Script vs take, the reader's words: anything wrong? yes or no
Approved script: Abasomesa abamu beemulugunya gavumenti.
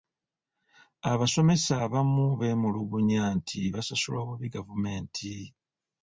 yes